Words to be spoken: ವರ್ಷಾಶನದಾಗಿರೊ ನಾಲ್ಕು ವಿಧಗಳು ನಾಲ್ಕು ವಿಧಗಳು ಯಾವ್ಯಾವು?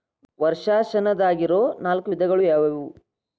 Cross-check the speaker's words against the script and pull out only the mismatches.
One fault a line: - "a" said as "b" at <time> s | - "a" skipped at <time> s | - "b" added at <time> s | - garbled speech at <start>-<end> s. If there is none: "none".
- "ನಾಲ್ಕು ವಿಧಗಳು" skipped at 2.4 s